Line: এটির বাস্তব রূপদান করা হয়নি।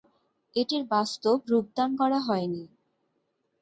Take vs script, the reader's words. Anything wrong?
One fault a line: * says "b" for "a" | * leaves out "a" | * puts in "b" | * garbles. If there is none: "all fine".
all fine